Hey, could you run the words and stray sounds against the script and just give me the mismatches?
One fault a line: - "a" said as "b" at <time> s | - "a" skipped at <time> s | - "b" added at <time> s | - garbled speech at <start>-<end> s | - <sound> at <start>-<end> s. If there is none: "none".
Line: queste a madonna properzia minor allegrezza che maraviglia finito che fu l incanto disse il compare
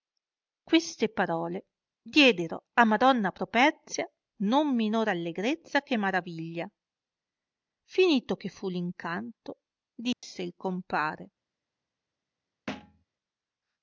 - "parole diedero" added at 1.1 s
- "non" added at 4.4 s
- dropout at 10.1-10.2 s
- thud at 12.7-13.1 s